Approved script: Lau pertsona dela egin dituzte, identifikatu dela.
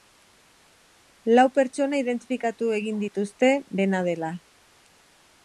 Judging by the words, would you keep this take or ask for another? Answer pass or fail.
fail